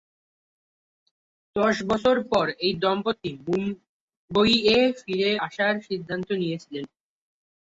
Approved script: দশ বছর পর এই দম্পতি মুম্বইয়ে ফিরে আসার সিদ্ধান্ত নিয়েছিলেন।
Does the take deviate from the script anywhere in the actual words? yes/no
no